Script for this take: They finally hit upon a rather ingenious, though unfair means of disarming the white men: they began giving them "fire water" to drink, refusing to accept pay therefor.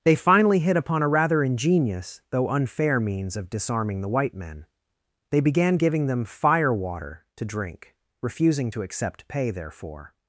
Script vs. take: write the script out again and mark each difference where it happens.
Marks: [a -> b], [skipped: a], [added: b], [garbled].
They finally hit upon a rather ingenious, though unfair means of disarming the white men: they began giving them "fire water" to drink, refusing to accept pay therefor.